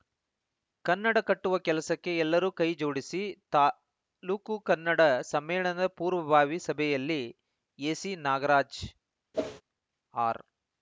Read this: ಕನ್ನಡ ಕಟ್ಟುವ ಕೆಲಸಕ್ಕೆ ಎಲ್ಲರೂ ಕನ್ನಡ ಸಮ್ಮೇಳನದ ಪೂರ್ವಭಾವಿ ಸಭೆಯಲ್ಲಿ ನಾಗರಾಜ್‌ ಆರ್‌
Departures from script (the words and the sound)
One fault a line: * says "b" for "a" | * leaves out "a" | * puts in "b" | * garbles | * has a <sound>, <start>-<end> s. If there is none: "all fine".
* puts in "ಕೈ ಜೋಡಿಸಿ ತಾಲೂಕು"
* puts in "ಎಸಿ"
* has a whoosh, 9.3-9.6 s